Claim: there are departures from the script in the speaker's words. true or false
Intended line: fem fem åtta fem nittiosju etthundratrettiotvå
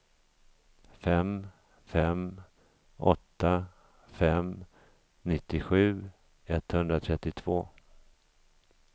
false